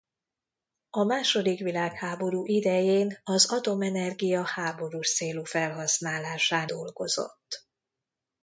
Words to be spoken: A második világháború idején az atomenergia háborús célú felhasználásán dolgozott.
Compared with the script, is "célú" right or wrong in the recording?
right